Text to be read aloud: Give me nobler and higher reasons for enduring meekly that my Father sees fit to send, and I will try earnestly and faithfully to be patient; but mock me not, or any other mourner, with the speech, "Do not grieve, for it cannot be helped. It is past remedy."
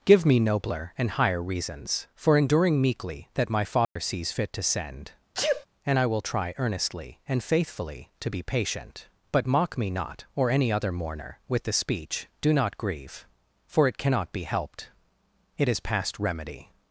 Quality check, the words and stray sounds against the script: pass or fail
fail